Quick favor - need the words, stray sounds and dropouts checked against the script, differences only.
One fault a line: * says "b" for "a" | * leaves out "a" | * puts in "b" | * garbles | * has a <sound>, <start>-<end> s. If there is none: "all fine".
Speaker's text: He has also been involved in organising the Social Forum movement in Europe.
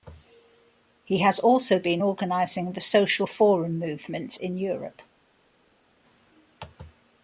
* leaves out "involved in"